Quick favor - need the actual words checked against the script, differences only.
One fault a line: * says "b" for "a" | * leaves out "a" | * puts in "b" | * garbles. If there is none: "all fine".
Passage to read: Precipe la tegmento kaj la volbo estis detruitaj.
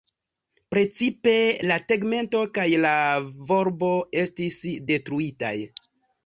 all fine